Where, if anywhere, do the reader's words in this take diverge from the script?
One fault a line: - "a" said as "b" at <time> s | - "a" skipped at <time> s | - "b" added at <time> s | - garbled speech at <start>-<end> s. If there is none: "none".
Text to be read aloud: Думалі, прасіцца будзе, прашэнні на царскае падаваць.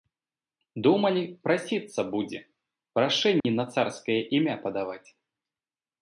- "імя" added at 4.4 s